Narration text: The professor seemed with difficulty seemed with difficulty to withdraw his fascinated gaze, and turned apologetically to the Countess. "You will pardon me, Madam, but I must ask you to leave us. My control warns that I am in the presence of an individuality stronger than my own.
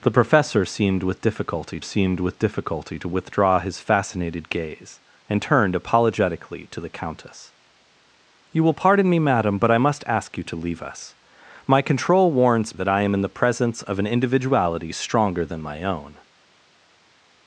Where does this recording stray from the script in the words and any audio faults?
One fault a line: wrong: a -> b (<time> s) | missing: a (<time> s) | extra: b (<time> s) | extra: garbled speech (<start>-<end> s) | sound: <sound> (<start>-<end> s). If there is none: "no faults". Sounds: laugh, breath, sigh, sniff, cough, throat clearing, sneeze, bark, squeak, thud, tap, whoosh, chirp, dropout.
no faults